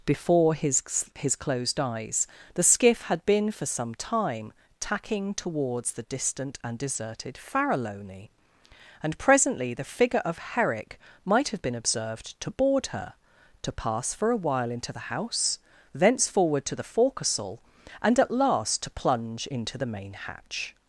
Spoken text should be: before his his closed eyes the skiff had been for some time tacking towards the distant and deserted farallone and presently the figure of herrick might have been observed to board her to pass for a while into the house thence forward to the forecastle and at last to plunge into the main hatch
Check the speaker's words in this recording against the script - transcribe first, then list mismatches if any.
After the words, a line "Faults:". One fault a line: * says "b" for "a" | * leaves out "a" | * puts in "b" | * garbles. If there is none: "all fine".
before his his closed eyes the skiff had been for some time tacking towards the distant and deserted farallone and presently the figure of herrick might have been observed to board her to pass for a while into the house thence forward to the forecastle and at last to plunge into the main hatch
Faults:
all fine